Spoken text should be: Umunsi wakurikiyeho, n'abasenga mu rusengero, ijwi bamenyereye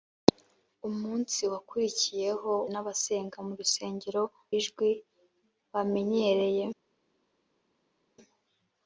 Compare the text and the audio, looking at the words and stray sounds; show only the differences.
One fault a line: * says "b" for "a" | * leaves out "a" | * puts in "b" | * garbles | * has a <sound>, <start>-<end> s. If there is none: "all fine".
all fine